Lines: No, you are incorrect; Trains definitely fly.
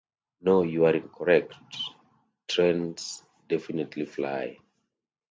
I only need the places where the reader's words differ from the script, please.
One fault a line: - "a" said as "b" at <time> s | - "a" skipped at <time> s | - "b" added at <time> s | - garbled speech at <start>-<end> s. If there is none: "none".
none